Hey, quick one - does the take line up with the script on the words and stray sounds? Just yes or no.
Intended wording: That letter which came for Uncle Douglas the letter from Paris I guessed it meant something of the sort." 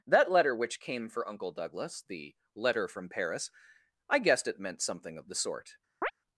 no